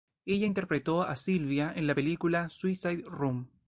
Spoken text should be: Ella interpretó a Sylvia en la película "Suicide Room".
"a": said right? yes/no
yes